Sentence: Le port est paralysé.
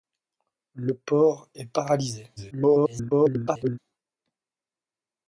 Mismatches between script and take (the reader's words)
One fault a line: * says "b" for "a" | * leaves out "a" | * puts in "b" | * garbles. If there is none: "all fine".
* garbles